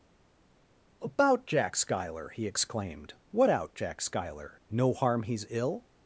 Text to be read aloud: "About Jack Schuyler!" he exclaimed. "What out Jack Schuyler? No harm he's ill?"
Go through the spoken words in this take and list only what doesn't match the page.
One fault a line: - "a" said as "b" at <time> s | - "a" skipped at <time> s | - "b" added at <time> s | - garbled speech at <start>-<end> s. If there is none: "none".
none